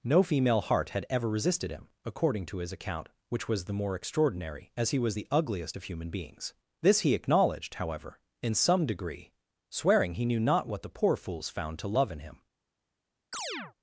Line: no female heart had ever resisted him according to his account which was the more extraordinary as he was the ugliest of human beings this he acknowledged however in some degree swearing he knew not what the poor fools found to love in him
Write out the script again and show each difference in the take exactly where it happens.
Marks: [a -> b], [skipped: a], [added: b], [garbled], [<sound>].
no female heart had ever resisted him according to his account which was the more extraordinary as he was the ugliest of human beings this he acknowledged however in some degree swearing he knew not what the poor fools found to love in him [chirp]